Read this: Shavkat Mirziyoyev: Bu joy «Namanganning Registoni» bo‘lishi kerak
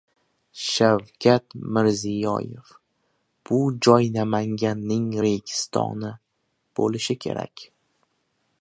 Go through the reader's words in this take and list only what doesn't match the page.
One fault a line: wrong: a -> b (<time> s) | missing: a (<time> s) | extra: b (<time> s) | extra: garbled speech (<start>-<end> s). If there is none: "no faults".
no faults